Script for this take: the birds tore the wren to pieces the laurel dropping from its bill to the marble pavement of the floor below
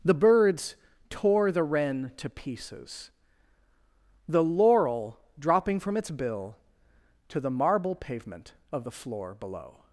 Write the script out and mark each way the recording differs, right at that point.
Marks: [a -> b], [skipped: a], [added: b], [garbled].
the birds tore the wren to pieces the laurel dropping from its bill to the marble pavement of the floor below